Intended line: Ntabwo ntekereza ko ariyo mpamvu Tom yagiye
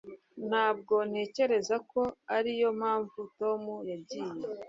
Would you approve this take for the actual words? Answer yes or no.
yes